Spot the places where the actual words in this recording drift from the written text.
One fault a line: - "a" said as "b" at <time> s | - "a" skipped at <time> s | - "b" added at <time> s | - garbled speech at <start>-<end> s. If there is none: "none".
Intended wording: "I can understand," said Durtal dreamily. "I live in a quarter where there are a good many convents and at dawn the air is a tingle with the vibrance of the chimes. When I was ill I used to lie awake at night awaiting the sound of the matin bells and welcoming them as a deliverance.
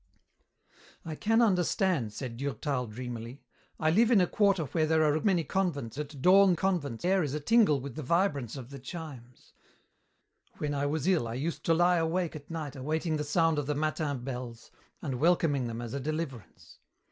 - "good" skipped at 5.2 s
- "and" skipped at 6.0 s
- "the" said as "convents" at 6.5 s